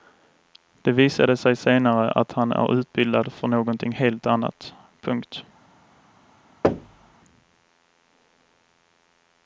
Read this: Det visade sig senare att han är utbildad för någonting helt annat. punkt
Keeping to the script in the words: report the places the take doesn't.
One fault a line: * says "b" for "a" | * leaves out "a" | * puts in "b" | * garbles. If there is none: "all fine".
all fine